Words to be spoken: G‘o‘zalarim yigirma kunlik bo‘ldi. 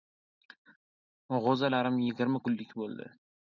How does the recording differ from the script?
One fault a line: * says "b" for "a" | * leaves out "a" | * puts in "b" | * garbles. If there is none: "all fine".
all fine